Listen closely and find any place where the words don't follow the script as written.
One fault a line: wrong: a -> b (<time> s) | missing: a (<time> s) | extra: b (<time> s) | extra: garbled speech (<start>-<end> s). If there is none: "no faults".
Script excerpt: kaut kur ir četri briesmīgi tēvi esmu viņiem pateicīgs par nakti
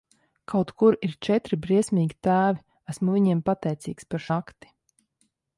no faults